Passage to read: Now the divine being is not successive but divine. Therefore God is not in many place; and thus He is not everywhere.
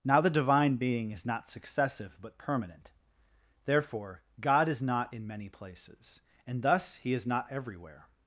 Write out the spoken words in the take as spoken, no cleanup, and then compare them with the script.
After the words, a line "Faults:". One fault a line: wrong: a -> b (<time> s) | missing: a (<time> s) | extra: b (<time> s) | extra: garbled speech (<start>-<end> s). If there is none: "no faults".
Now the divine being is not successive but permanent. Therefore God is not in many places; and thus He is not everywhere.
Faults:
wrong: divine -> permanent (2.4 s)
wrong: place -> places (5.5 s)